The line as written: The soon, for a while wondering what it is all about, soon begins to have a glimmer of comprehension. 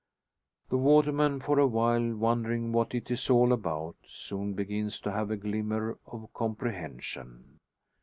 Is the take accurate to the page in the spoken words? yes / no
no